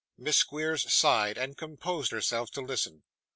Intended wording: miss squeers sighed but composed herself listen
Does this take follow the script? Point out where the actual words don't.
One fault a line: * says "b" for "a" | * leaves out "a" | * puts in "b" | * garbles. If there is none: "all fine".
* says "and" for "but"
* puts in "to"